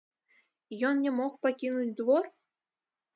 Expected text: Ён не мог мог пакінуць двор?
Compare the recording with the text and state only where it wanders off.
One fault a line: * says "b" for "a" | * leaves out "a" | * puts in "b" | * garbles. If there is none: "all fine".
* leaves out "мог"